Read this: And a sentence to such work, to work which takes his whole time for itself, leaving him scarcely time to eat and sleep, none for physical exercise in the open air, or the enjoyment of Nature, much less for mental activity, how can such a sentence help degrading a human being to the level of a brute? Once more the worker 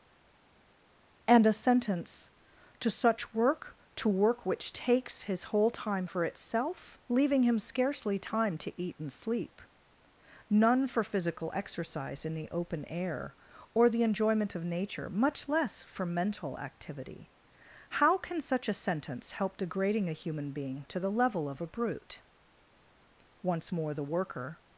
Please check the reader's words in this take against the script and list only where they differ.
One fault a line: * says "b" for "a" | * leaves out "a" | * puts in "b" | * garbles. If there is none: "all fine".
all fine